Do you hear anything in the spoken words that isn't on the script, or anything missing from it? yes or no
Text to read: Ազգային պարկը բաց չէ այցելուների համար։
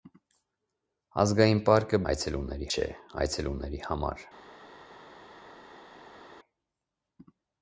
yes